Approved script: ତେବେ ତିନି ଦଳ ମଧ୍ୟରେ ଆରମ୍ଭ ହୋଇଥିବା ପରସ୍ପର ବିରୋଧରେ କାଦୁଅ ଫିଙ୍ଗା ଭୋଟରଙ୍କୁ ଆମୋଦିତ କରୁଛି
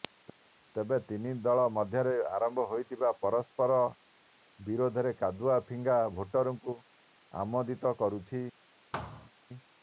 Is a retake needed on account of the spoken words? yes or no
no